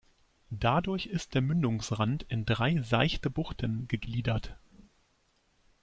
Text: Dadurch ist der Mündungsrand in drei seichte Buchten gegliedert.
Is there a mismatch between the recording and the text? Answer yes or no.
no